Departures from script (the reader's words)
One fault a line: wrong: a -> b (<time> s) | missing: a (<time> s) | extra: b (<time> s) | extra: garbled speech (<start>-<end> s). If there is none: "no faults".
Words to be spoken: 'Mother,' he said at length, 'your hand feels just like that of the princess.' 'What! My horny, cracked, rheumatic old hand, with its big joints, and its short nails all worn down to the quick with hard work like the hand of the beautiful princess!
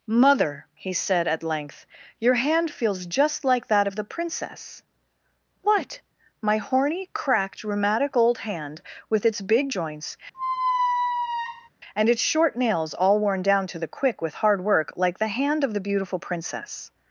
no faults